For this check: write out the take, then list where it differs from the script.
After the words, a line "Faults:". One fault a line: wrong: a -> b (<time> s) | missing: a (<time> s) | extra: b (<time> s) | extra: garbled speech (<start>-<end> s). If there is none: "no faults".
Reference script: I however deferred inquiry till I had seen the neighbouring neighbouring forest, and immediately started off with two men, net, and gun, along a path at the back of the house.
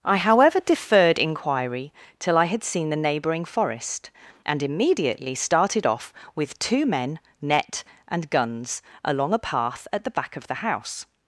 I however deferred inquiry till I had seen the neighbouring forest, and immediately started off with two men, net, and guns, along a path at the back of the house.
Faults:
missing: neighbouring (3.5 s)
wrong: gun -> guns (8.3 s)